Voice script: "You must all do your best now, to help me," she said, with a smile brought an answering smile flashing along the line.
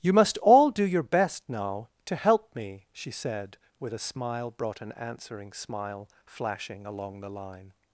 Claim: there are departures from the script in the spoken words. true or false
false